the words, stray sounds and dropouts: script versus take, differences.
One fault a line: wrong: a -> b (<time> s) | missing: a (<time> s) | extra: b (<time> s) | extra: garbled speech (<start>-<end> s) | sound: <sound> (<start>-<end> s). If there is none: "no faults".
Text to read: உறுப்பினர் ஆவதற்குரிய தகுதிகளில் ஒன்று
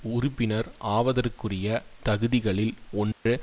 sound: dropout (3.1-3.3 s)